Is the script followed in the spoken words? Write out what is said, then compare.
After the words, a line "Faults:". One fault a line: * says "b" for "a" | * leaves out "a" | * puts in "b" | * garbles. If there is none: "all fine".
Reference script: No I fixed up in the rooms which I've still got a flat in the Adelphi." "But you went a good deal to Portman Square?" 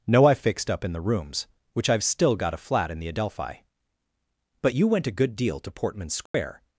No I fixed up in the rooms which I've still got a flat in the Adelphi." "But you went a good deal to Portman Square?"
Faults:
all fine